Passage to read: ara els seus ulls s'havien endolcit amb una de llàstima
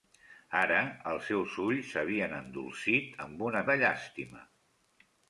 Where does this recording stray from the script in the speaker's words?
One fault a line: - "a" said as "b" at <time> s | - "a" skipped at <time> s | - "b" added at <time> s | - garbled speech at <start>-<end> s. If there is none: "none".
none